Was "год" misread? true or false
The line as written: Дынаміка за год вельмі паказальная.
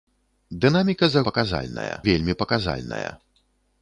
true